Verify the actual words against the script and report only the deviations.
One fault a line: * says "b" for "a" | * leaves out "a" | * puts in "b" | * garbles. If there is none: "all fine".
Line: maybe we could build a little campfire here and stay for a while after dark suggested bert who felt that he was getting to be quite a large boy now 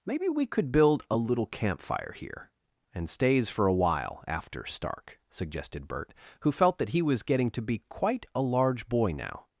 * says "stays" for "stay"
* says "stark" for "dark"